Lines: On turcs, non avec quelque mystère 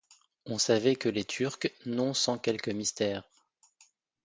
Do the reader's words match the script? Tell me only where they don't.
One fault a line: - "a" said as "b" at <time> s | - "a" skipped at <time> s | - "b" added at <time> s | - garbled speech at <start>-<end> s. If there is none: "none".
- "savait que les" added at 0.6 s
- "avec" said as "sans" at 2.1 s